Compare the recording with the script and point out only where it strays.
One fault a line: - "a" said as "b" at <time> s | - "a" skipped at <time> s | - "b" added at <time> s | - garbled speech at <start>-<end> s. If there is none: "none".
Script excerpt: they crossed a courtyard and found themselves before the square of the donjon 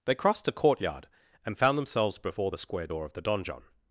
- "door" added at 2.8 s